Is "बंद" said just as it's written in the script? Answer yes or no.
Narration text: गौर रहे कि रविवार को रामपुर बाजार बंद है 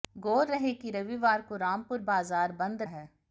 yes